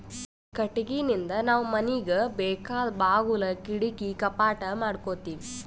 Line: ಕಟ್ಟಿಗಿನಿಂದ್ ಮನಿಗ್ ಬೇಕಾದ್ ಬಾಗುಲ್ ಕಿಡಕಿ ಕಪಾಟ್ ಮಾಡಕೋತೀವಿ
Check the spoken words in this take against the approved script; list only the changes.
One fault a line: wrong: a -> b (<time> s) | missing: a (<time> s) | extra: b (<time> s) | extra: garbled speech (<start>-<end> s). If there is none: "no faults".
extra: ನಾವ್ (1.4 s)